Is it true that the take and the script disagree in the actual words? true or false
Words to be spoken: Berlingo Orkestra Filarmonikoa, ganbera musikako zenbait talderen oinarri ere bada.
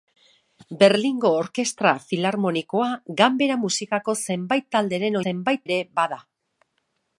true